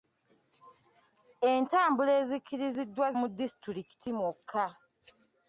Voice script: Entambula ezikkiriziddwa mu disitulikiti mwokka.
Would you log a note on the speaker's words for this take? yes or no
no